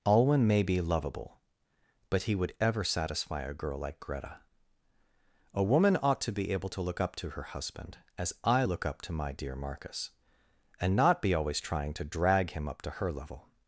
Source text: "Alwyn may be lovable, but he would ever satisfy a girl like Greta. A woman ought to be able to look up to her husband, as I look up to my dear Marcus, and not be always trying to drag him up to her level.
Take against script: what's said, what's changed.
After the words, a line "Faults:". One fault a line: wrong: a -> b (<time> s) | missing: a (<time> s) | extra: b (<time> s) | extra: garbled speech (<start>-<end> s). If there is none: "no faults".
"Alwyn may be lovable, but he would ever satisfy a girl like Greta. A woman ought to be able to look up to her husband, as I look up to my dear Marcus, and not be always trying to drag him up to her level.
Faults:
no faults